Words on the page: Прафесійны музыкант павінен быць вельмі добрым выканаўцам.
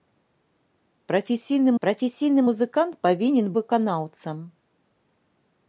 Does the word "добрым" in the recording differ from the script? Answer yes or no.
yes